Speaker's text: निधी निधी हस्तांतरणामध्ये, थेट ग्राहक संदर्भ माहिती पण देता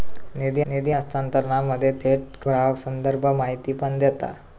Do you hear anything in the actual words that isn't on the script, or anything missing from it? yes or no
no